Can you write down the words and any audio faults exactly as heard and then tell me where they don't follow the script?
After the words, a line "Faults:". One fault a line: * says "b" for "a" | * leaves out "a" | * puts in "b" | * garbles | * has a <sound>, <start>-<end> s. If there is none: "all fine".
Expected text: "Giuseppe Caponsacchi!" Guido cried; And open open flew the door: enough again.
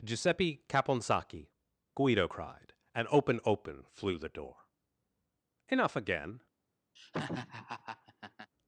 "Giuseppe Caponsacchi!" Guido cried; And open open flew the door: enough again.
Faults:
* has a laugh, 7.0-8.5 s